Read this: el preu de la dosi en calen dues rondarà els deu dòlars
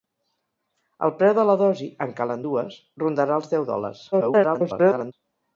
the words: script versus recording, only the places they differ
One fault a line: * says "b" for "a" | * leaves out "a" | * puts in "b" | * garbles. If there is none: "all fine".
* garbles